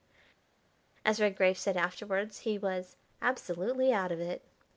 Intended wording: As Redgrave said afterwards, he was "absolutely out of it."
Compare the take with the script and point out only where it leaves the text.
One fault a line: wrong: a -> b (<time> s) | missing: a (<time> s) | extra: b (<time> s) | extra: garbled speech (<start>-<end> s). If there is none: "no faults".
no faults